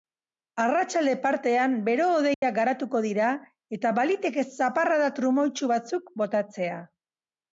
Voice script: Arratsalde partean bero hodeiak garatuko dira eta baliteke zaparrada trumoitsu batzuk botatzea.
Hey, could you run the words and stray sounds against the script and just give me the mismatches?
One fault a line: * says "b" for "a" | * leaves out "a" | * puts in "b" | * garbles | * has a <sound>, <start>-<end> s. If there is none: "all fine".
* has a dropout, 2.3-2.4 s